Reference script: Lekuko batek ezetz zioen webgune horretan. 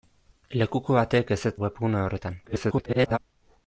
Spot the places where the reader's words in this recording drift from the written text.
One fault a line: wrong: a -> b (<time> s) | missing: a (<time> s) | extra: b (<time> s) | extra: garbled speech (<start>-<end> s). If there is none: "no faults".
missing: zioen (1.6 s)
extra: garbled speech (2.5-3.2 s)